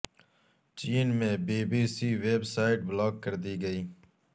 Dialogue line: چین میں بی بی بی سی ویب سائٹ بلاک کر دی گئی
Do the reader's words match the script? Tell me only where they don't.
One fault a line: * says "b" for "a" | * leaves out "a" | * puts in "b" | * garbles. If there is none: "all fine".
* leaves out "بی"